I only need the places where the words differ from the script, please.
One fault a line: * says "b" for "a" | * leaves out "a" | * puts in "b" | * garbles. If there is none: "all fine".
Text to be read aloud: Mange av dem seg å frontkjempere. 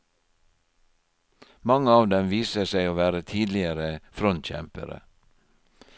* puts in "viser"
* puts in "være tidligere"